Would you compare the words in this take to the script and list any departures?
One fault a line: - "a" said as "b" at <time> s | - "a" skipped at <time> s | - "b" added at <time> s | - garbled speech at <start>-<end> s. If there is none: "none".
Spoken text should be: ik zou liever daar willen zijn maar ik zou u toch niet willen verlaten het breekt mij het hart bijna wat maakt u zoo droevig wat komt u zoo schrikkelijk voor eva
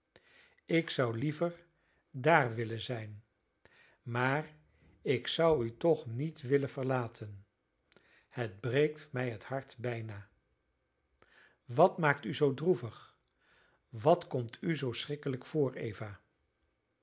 none